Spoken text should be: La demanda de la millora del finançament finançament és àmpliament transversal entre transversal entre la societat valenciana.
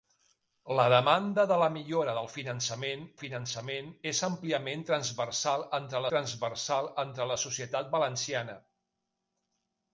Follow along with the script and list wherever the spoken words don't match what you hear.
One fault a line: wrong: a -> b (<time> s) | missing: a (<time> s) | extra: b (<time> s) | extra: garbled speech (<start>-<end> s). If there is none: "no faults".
no faults